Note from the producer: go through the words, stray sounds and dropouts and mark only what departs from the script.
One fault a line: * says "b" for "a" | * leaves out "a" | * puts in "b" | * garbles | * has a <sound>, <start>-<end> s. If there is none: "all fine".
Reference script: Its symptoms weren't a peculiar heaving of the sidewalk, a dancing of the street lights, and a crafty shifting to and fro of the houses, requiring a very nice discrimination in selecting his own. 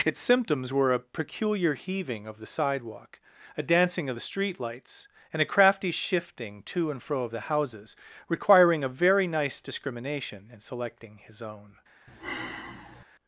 * says "were" for "weren't"
* has a sigh, 12.1-13.0 s